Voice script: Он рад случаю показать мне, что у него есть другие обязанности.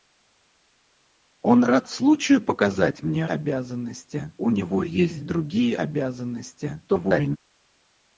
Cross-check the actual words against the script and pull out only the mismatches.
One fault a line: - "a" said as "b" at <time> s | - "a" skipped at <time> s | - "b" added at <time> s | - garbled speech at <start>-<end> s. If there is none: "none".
- "что" said as "обязанности" at 3.3 s
- garbled speech at 6.9-7.4 s